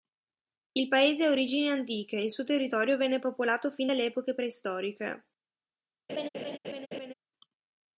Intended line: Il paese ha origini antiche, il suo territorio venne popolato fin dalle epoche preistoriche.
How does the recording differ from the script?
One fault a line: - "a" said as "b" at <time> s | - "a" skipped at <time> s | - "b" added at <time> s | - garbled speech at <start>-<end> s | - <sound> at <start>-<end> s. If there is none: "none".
- laugh at 6.1-7.1 s